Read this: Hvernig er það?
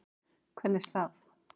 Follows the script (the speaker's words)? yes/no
yes